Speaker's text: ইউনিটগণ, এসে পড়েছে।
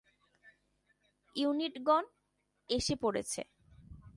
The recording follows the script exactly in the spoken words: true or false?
true